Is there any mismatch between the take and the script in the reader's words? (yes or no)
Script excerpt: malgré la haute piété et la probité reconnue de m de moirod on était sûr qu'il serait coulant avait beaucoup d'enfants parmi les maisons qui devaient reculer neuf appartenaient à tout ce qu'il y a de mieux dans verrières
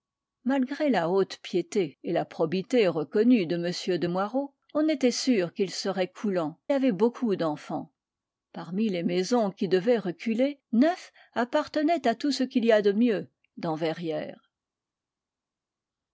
no